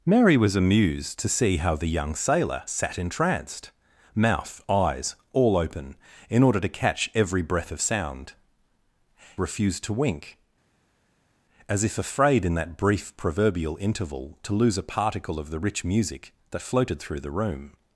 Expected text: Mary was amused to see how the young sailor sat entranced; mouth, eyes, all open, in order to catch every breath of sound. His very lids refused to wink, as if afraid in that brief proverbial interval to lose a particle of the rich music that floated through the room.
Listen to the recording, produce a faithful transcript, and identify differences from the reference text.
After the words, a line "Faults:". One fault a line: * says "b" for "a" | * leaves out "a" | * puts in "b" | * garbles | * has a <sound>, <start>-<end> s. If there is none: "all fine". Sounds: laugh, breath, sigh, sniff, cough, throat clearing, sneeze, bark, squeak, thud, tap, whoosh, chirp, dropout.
Mary was amused to see how the young sailor sat entranced; mouth, eyes, all open, in order to catch every breath of sound. Refused to wink, as if afraid in that brief proverbial interval to lose a particle of the rich music that floated through the room.
Faults:
* leaves out "His very lids"